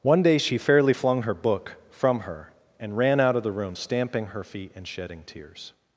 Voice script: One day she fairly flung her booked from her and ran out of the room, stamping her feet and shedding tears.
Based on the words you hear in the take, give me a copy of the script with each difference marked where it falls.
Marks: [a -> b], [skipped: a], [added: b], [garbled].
One day she fairly flung her [booked -> book] from her and ran out of the room, stamping her feet and shedding tears.